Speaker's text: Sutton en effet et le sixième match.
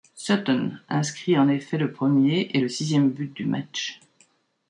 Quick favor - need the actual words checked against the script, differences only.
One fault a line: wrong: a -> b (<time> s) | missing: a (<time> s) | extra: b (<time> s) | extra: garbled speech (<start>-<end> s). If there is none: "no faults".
extra: inscrit (0.9 s)
extra: le premier (1.8 s)
extra: but du (3.1 s)